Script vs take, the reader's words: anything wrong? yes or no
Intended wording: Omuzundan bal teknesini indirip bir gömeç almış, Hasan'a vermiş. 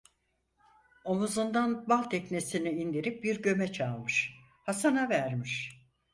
no